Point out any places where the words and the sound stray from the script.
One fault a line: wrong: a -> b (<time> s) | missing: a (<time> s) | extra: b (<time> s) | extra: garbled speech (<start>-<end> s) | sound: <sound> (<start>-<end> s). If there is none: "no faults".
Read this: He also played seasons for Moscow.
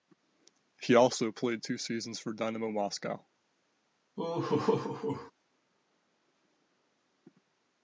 extra: two (1.6 s)
extra: Dynamo (2.3 s)
sound: laugh (4.2-5.3 s)